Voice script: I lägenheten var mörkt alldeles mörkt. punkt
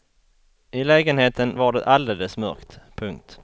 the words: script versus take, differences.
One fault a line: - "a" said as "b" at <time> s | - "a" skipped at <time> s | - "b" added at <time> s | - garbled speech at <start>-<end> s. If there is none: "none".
- "mörkt" said as "det" at 1.7 s